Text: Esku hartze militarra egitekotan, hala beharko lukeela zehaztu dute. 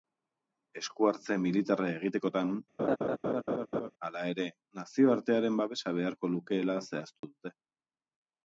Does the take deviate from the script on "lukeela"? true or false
false